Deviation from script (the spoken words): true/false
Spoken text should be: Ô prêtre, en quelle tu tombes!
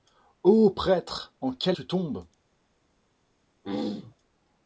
false